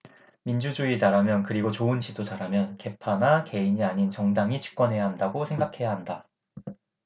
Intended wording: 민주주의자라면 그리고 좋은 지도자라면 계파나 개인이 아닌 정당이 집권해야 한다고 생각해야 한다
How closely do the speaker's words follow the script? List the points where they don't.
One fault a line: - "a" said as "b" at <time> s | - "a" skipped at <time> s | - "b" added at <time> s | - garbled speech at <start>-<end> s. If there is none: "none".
none